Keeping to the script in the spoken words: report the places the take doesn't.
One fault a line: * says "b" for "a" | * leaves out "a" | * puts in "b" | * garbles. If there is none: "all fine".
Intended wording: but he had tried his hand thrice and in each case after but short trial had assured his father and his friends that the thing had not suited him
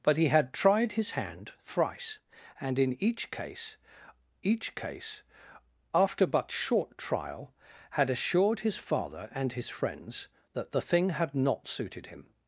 * puts in "each case"